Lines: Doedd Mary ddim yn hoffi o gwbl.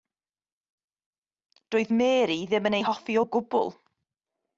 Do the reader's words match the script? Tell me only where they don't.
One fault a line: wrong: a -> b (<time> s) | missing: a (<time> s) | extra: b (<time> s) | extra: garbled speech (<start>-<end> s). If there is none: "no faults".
extra: ei (2.8 s)